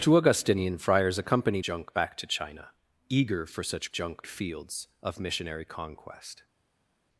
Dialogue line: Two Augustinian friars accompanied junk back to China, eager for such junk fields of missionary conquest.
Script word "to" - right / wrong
right